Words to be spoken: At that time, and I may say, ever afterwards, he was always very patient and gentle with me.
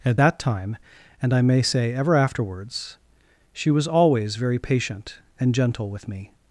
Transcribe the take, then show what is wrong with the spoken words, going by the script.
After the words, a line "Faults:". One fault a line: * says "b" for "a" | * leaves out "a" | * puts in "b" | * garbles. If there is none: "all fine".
At that time, and I may say, ever afterwards, she was always very patient and gentle with me.
Faults:
* says "she" for "he"